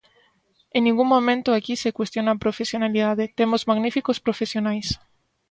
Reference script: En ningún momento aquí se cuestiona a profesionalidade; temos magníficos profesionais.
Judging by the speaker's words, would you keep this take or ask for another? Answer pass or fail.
pass